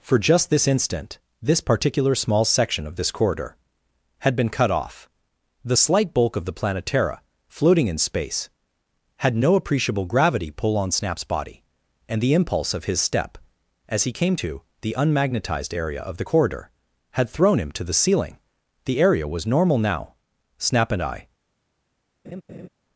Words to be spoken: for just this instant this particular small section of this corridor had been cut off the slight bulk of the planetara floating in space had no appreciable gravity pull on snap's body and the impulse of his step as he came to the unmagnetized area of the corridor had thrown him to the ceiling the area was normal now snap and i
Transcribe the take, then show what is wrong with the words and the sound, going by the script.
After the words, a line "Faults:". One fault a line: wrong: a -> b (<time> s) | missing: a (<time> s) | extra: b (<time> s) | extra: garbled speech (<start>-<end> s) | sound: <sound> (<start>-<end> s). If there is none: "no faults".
for just this instant this particular small section of this corridor had been cut off the slight bulk of the planetara floating in space had no appreciable gravity pull on snap's body and the impulse of his step as he came to the unmagnetized area of the corridor had thrown him to the ceiling the area was normal now snap and i
Faults:
sound: laugh (22.2-22.7 s)